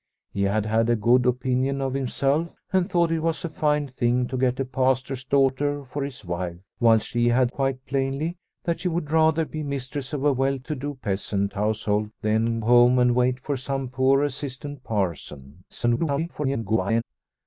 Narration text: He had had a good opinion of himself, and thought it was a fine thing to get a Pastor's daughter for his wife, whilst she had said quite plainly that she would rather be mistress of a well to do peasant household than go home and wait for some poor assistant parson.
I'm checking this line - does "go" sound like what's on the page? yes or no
no